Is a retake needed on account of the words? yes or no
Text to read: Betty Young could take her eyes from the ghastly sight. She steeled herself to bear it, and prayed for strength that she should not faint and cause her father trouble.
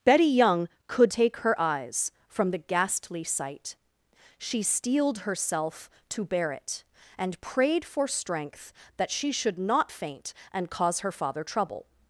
no